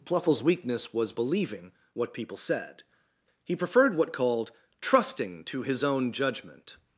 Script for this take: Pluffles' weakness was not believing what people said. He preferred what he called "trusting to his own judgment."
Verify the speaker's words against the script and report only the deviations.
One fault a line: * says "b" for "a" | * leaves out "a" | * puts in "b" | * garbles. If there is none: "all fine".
* leaves out "not"
* leaves out "he"